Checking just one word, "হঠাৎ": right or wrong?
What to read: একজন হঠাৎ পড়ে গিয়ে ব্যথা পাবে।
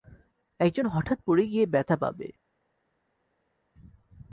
right